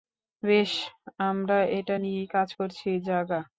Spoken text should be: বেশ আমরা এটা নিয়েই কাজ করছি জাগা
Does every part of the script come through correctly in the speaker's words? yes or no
yes